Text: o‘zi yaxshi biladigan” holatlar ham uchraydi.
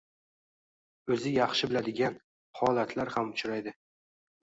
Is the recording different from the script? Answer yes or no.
no